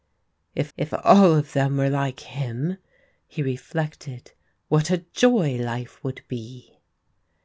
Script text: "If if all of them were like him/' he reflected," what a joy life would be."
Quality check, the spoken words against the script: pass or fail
pass